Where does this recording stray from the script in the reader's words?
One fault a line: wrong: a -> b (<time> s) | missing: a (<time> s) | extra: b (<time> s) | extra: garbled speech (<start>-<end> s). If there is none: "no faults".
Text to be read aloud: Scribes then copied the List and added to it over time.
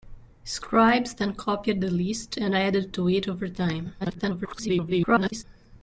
extra: garbled speech (4.0-5.4 s)